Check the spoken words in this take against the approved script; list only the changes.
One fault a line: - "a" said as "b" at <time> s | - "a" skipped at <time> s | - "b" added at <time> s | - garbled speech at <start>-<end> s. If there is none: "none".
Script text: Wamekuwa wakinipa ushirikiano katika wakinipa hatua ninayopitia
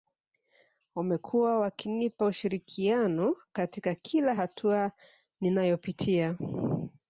- "wakinipa" said as "kila" at 4.0 s